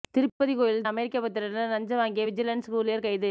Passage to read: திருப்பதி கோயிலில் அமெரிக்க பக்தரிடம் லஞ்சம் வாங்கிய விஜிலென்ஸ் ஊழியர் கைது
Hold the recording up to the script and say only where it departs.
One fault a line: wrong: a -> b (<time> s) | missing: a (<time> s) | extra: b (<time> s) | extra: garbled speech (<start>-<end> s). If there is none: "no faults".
no faults